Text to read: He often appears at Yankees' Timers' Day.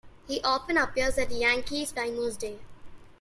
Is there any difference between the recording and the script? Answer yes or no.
no